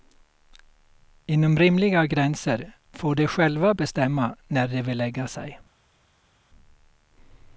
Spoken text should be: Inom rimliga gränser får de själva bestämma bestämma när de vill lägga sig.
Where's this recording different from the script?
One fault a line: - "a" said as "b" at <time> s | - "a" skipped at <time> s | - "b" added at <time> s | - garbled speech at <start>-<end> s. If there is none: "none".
- "bestämma" skipped at 4.4 s